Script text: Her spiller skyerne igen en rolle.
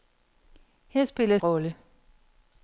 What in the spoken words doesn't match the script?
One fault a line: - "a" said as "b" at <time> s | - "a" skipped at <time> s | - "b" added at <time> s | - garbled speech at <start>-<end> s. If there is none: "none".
- "skyerne igen en" skipped at 1.4 s